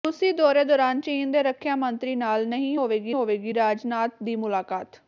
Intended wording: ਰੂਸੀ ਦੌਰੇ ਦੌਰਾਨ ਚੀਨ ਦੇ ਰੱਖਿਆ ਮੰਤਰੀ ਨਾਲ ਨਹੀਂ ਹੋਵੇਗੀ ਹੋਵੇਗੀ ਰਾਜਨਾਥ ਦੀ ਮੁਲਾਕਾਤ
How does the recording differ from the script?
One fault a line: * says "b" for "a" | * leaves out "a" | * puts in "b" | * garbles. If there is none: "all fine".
all fine